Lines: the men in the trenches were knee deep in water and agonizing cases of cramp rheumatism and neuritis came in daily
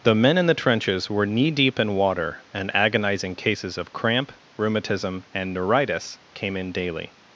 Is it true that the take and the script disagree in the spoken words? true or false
false